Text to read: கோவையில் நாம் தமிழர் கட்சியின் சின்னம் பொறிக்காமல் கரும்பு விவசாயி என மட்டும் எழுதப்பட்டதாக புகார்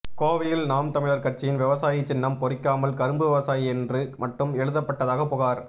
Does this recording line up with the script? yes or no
no